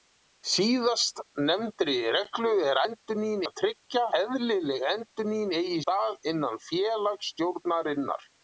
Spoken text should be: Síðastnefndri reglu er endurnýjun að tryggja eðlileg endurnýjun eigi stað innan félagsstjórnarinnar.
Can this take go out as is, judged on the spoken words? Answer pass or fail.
pass